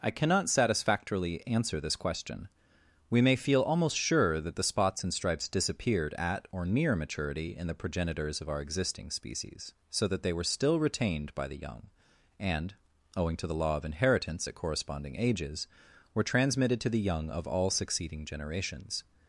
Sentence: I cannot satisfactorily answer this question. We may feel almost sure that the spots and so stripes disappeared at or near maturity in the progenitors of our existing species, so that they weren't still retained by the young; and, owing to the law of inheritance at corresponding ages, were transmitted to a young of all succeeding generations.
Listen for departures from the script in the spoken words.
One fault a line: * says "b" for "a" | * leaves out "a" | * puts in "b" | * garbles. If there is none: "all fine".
* leaves out "so"
* says "were" for "weren't"
* says "the" for "a"